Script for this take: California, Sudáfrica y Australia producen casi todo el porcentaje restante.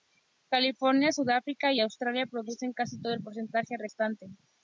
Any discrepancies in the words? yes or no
no